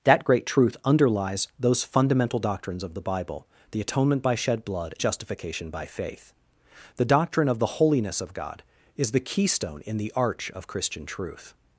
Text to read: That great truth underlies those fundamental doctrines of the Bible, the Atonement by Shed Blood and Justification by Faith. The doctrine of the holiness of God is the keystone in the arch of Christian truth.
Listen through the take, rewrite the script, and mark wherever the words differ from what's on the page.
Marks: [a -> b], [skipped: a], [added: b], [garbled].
That great truth underlies those fundamental doctrines of the Bible, the Atonement by Shed Blood [skipped: and] Justification by Faith. The doctrine of the holiness of God is the keystone in the arch of Christian truth.